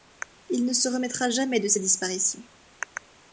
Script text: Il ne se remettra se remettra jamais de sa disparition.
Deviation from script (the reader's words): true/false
true